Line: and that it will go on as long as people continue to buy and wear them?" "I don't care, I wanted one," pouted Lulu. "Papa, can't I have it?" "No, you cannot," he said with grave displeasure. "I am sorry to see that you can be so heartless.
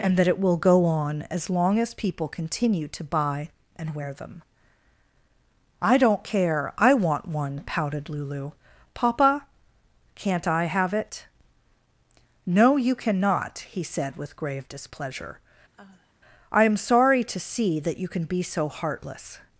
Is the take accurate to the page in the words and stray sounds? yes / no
no